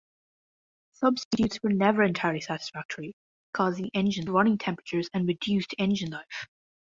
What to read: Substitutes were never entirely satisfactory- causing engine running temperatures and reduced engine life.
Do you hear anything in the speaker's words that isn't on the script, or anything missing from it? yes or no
no